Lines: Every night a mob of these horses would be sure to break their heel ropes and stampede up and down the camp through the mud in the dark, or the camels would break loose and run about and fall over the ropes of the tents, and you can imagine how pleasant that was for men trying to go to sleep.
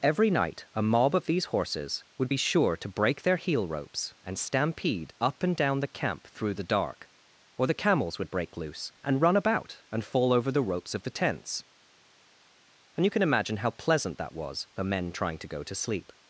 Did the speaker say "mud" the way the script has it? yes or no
no